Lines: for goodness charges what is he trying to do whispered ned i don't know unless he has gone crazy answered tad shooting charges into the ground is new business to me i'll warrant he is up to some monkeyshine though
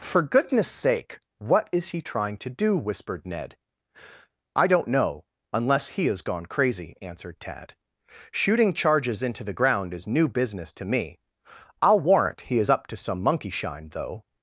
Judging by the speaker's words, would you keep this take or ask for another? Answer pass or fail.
fail